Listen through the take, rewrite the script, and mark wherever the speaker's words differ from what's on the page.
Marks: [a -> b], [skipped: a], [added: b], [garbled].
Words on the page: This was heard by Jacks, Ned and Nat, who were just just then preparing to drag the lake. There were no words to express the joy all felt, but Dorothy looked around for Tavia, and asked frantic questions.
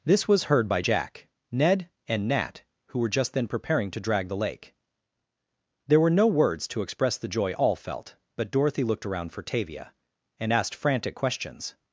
This was heard by [Jacks, -> Jack] Ned and Nat, who were just [skipped: just] then preparing to drag the lake. There were no words to express the joy all felt, but Dorothy looked around for Tavia, and asked frantic questions.